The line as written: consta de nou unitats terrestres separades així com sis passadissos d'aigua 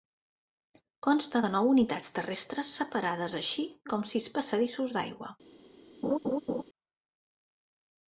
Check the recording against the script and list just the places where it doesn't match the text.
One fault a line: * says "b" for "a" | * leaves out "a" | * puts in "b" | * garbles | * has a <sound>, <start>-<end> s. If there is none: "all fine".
* has a laugh, 6.0-6.6 s